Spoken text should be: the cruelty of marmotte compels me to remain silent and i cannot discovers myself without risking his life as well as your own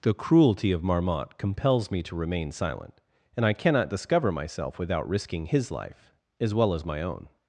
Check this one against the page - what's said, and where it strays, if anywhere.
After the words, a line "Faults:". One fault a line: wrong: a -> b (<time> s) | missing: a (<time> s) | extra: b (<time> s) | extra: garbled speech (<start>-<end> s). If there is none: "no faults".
the cruelty of marmotte compels me to remain silent and i cannot discover myself without risking his life as well as my own
Faults:
wrong: discovers -> discover (3.9 s)
wrong: your -> my (6.9 s)